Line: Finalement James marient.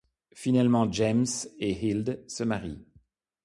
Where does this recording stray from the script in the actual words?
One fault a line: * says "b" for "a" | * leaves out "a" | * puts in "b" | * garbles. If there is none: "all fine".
* puts in "et Hilde se"